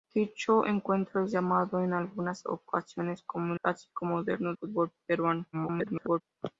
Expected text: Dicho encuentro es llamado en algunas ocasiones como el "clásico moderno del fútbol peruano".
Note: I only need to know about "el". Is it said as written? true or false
false